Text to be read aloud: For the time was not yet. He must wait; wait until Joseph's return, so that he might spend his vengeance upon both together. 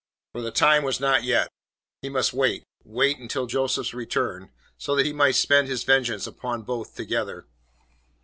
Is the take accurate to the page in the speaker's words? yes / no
yes